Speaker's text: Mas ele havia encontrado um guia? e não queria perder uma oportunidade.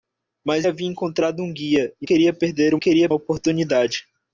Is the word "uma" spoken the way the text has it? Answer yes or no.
no